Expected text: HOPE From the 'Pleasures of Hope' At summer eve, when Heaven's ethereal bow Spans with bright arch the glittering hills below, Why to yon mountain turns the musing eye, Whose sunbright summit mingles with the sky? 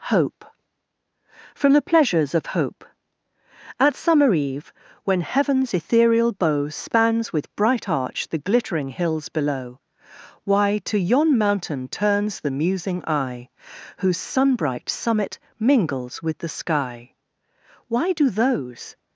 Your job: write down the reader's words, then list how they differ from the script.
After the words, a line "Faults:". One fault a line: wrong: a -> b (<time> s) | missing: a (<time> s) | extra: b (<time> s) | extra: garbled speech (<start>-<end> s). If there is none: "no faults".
HOPE From the 'Pleasures of Hope' At summer eve, when Heaven's ethereal bow Spans with bright arch the glittering hills below, Why to yon mountain turns the musing eye, Whose sunbright summit mingles with the sky? Why do those
Faults:
extra: Why do those (17.9 s)